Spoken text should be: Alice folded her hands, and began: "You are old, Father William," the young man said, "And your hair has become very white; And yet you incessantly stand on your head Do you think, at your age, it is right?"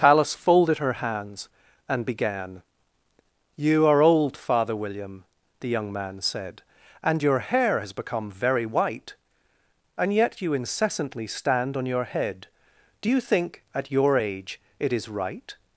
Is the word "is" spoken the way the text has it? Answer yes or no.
yes